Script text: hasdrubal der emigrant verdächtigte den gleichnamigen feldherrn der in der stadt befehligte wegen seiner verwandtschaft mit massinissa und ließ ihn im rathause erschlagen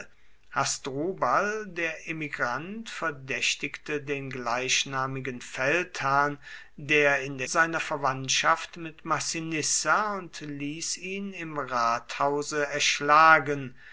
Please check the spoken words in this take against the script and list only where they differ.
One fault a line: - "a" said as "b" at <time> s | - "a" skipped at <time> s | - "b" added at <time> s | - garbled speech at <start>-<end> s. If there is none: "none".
- "stadt befehligte wegen" skipped at 7.5 s